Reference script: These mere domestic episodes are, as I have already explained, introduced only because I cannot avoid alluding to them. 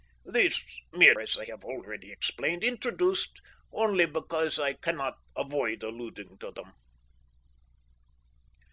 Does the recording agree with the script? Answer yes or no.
no